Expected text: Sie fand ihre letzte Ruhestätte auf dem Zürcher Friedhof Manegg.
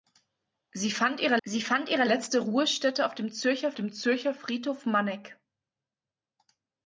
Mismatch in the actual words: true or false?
true